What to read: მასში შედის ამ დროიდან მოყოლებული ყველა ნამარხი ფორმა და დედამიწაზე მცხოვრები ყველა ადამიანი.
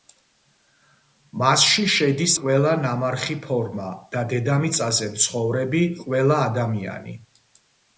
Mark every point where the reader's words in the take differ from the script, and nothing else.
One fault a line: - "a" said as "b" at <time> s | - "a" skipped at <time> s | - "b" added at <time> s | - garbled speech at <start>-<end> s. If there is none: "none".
- "ამ დროიდან მოყოლებული" skipped at 2.3 s